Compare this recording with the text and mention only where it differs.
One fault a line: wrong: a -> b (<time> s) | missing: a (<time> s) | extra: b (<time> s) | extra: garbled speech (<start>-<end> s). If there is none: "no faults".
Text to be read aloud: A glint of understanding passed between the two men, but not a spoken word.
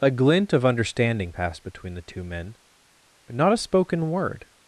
no faults